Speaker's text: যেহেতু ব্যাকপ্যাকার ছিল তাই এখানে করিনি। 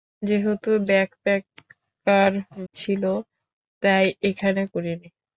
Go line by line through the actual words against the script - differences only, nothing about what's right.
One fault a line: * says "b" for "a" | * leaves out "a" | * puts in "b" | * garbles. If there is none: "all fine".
all fine